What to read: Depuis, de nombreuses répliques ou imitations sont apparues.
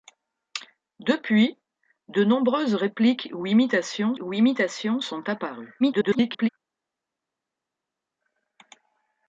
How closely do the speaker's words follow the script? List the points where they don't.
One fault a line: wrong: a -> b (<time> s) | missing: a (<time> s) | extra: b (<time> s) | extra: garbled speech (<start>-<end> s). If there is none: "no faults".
extra: ou imitations (4.2 s)
extra: garbled speech (5.8-6.5 s)